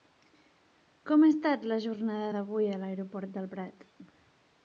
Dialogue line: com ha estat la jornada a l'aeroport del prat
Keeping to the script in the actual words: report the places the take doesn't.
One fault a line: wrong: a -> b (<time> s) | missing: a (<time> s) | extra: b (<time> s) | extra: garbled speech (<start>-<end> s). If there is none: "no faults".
extra: d'avui (2.3 s)